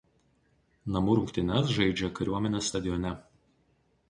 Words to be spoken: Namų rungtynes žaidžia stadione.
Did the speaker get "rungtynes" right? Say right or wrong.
right